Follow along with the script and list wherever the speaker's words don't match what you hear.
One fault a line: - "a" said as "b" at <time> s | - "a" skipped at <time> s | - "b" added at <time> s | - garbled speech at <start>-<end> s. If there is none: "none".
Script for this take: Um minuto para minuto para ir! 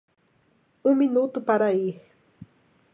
- "minuto para" skipped at 1.7 s